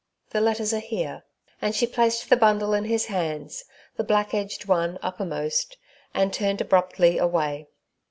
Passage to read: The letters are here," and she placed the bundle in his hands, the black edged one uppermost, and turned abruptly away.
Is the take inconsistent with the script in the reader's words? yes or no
no